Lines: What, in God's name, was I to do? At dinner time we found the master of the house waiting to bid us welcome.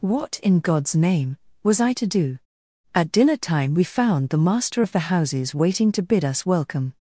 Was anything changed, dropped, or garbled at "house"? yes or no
yes